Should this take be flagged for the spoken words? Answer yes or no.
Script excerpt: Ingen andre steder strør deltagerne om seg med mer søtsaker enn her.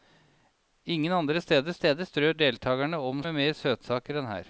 yes